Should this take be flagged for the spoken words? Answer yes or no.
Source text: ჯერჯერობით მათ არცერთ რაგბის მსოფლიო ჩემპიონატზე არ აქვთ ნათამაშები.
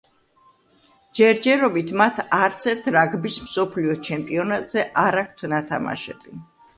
no